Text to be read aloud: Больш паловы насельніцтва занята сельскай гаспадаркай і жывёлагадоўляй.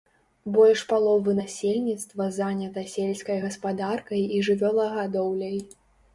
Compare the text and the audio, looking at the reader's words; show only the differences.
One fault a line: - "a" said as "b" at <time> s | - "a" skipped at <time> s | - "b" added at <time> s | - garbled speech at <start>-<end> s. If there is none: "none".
none